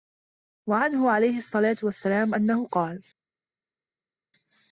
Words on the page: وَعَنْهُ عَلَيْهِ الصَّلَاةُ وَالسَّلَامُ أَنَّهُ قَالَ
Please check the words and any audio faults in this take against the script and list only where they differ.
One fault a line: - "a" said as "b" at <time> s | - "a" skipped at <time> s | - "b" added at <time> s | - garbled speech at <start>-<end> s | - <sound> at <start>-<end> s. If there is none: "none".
none